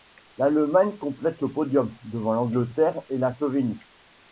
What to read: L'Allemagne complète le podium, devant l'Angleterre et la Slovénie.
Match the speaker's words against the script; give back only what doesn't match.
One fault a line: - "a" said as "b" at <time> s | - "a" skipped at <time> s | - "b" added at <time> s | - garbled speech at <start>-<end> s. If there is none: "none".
none